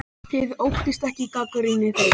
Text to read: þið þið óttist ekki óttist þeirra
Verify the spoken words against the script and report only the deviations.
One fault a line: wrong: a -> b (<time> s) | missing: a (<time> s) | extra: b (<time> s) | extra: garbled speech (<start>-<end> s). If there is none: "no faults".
missing: þið (0.6 s)
wrong: óttist -> gagnrýni (1.4 s)